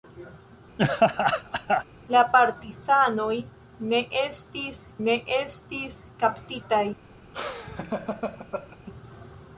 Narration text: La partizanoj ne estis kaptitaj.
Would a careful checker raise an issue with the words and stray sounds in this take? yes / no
yes